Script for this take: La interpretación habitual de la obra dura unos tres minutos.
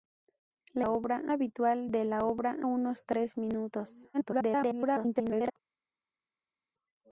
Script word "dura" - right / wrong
wrong